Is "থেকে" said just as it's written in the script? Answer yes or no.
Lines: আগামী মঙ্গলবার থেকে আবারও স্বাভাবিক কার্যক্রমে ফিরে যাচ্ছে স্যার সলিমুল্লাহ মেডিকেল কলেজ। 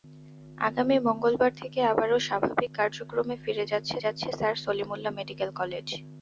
yes